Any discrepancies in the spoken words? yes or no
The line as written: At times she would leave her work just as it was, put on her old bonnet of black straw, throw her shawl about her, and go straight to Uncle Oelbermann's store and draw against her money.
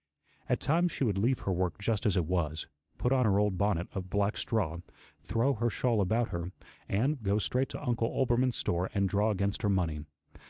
no